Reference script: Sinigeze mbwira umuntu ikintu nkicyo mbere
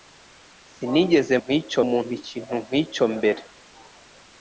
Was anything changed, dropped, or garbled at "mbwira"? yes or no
yes